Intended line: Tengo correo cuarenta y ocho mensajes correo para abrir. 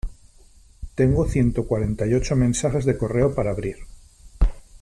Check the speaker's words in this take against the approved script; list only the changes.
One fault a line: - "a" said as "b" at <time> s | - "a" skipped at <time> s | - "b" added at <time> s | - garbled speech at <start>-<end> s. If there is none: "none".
- "correo" said as "ciento" at 1.3 s
- "de" added at 2.9 s